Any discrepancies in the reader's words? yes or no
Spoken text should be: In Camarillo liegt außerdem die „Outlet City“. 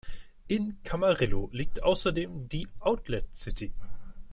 no